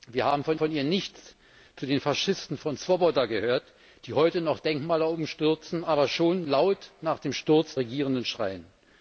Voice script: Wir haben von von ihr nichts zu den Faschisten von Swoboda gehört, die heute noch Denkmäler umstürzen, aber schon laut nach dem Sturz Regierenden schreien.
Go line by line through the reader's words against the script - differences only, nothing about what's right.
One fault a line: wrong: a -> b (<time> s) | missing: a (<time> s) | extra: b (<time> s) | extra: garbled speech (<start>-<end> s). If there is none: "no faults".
no faults